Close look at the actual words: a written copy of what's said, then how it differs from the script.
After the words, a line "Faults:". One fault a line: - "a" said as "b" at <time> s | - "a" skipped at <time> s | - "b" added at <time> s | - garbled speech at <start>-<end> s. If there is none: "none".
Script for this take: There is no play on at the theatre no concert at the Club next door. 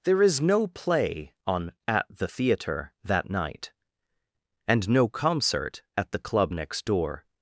There is no play on at the theatre that night, and no concert at the Club next door.
Faults:
- "that night and" added at 3.0 s